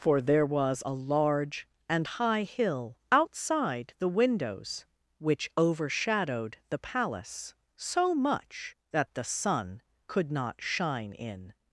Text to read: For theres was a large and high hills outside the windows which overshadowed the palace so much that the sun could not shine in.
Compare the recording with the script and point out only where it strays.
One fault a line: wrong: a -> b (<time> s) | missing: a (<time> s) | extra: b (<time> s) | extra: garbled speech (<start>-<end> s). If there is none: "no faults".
wrong: theres -> there (0.2 s)
wrong: hills -> hill (2.4 s)